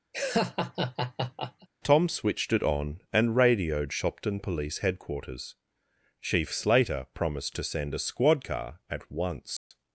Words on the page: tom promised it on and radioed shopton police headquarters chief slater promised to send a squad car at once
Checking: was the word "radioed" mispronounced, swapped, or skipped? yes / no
no